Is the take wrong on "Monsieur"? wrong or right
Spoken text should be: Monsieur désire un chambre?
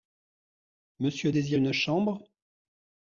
right